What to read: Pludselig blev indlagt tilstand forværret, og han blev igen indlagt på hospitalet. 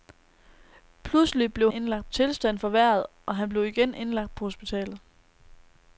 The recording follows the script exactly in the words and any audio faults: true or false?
true